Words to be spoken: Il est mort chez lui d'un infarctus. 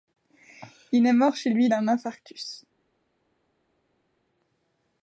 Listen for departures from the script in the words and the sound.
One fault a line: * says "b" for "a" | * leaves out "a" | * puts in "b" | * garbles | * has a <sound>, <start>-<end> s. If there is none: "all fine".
all fine